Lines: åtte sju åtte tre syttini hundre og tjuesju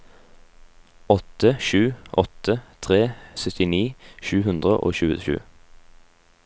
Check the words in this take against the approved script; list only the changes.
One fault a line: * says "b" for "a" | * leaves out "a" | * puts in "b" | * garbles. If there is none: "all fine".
* puts in "sju"